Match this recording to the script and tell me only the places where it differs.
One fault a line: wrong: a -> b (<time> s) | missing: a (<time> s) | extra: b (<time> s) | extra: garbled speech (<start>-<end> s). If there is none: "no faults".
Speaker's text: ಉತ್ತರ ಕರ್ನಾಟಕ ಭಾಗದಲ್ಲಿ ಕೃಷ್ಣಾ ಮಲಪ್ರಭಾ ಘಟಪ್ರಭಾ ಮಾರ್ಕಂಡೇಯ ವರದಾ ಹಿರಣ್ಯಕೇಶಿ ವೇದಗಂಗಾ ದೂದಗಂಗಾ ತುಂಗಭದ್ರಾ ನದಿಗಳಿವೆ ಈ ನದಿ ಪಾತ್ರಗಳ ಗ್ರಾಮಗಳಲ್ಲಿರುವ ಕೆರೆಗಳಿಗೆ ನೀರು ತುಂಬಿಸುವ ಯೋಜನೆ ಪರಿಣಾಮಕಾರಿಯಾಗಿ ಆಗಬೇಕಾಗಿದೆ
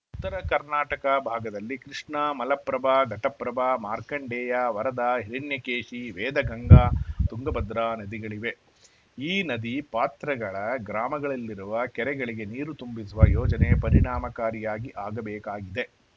missing: ದೂದಗಂಗಾ (6.8 s)